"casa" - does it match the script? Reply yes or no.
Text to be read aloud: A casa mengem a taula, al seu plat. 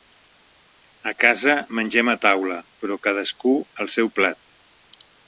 yes